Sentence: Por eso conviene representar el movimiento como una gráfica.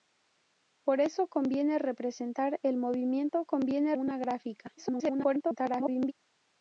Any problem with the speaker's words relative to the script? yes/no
yes